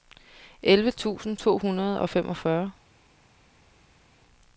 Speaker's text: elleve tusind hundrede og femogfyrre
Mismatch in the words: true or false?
true